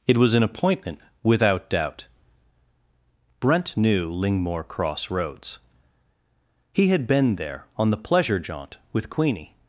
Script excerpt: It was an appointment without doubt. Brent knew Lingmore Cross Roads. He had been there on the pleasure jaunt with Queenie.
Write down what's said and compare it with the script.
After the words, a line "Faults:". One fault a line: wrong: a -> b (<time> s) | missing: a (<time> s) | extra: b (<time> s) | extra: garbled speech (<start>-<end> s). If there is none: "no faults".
It was an appointment without doubt. Brent knew Lingmore Cross Roads. He had been there on the pleasure jaunt with Queenie.
Faults:
no faults